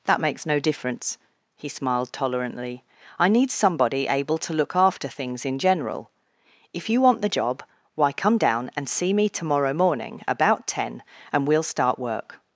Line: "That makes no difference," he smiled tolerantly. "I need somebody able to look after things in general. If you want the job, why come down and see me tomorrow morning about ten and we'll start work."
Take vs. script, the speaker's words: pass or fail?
pass